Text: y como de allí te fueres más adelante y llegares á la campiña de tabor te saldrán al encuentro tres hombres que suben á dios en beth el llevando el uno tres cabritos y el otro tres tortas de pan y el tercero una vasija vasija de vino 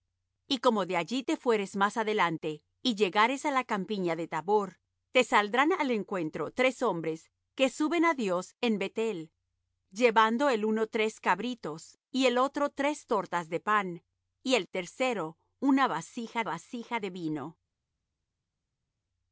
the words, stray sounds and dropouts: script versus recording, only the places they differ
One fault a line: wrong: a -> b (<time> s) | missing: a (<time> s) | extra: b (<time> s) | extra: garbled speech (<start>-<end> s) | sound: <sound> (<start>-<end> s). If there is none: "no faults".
no faults